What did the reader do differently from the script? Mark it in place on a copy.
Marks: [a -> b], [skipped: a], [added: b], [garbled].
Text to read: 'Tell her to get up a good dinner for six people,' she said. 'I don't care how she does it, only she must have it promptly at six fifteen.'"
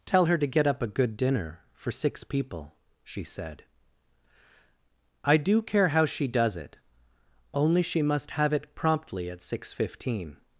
'Tell her to get up a good dinner for six people,' she said. 'I [don't -> do] care how she does it, only she must have it promptly at six fifteen.'"